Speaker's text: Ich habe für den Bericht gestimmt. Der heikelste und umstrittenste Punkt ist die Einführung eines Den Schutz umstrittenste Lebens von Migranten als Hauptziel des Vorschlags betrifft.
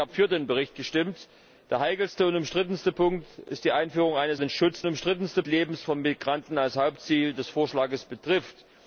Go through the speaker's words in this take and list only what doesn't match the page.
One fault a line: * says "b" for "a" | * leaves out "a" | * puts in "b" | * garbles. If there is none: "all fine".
all fine